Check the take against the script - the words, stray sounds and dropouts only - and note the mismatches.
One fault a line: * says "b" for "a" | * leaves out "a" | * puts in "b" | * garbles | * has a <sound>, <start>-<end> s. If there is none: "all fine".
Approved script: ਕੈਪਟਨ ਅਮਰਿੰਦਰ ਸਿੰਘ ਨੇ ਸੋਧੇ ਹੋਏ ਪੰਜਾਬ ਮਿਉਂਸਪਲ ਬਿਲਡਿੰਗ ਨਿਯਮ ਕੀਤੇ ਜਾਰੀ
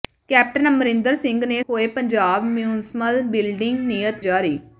* leaves out "ਸੋਧੇ"
* leaves out "ਕੀਤੇ"